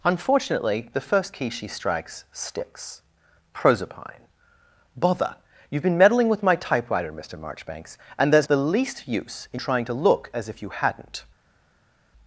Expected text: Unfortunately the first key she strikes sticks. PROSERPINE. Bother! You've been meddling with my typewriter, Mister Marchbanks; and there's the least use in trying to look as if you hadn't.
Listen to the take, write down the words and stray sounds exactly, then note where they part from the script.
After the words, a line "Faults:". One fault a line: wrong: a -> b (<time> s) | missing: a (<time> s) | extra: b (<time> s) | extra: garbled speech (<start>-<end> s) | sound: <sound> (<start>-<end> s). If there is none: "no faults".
Unfortunately the first key she strikes sticks. PROSERPINE. Bother! You've been meddling with my typewriter, Mister Marchbanks; and there's the least use in trying to look as if you hadn't.
Faults:
no faults